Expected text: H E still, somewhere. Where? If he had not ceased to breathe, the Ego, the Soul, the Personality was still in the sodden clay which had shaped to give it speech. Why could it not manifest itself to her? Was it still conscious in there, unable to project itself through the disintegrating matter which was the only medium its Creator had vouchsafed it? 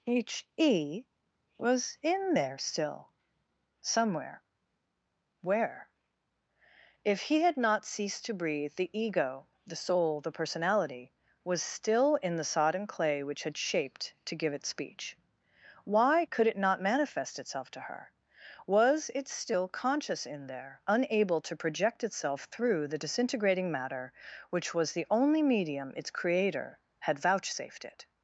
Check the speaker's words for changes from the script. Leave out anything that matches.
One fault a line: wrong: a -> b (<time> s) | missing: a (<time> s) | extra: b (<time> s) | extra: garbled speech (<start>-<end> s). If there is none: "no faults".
extra: was in there (1.6 s)